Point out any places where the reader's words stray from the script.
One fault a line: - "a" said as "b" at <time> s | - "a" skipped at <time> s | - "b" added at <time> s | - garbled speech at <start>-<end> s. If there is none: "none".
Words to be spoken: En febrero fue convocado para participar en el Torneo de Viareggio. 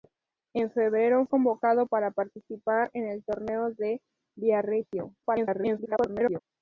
- "fue" skipped at 1.3 s
- garbled speech at 5.2-6.4 s